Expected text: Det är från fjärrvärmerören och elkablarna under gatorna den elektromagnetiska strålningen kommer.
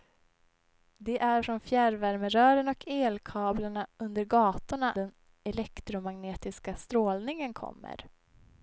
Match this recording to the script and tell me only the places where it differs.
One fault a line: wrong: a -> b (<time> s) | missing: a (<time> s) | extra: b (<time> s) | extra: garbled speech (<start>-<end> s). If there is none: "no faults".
no faults